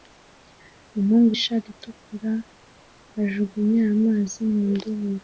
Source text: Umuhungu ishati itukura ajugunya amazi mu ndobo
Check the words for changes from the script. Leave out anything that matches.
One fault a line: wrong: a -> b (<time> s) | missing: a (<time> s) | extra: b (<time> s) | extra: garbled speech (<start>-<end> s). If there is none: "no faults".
no faults